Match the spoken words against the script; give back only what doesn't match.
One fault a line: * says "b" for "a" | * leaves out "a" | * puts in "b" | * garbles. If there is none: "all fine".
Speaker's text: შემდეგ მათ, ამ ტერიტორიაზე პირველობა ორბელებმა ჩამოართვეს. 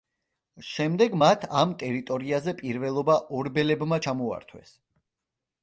all fine